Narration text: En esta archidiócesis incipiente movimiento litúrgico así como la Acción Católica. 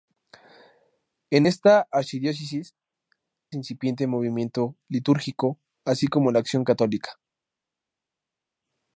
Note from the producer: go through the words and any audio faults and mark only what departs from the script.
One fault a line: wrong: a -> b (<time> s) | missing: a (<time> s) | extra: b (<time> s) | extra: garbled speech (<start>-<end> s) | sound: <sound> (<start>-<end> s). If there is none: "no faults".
no faults